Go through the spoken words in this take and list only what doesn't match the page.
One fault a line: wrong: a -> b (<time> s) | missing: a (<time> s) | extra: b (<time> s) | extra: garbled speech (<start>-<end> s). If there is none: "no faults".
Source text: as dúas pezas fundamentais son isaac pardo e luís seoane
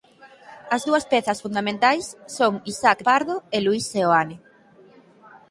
no faults